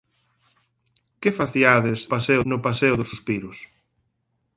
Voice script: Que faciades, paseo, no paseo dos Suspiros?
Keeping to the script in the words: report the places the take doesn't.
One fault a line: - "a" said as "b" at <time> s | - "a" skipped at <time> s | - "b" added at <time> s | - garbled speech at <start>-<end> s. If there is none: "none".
none